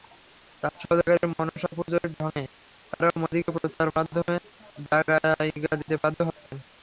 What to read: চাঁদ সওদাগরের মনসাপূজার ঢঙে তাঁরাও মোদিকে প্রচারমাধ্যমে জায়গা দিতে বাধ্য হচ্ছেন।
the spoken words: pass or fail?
pass